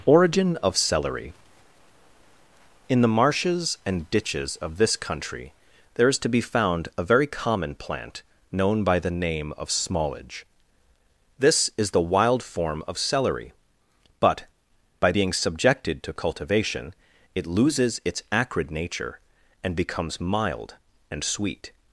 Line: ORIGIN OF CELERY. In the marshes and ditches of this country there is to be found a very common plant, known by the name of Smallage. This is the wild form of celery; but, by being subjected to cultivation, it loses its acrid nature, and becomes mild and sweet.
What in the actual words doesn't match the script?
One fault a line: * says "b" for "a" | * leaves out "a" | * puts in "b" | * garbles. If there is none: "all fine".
all fine